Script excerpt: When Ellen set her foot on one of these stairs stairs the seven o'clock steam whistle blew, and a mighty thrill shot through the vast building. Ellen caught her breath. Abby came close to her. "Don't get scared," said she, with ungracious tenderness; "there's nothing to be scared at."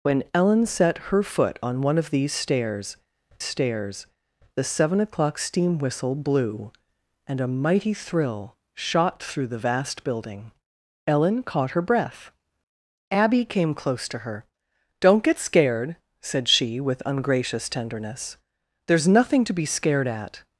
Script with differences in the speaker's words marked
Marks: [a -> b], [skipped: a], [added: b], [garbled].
When Ellen set her foot on one of these stairs stairs the seven o'clock steam whistle blew, and a mighty thrill shot through the vast building. Ellen caught her breath. Abby came close to her. "Don't get scared," said she, with ungracious tenderness; "there's nothing to be scared at."